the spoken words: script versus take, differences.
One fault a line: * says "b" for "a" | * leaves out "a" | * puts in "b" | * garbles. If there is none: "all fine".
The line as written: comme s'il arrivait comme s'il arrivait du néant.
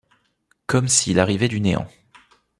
* leaves out "comme s'il arrivait"